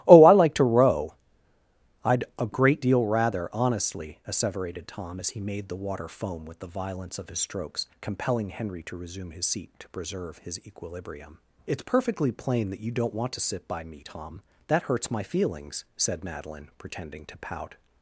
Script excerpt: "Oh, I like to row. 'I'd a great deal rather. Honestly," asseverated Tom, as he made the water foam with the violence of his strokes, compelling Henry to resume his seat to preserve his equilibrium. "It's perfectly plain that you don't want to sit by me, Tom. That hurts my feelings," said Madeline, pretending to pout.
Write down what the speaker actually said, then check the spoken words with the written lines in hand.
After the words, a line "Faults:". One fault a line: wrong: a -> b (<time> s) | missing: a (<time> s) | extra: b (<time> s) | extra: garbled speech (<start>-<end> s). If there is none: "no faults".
"Oh, I like to row. 'I'd a great deal rather. Honestly," asseverated Tom, as he made the water foam with the violence of his strokes, compelling Henry to resume his seat to preserve his equilibrium. "It's perfectly plain that you don't want to sit by me, Tom. That hurts my feelings," said Madeline, pretending to pout.
Faults:
no faults